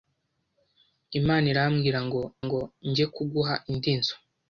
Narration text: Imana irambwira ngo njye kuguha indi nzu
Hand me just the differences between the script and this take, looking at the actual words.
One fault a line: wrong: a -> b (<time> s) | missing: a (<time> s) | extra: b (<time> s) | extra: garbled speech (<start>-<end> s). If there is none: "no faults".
extra: ngo (2.5 s)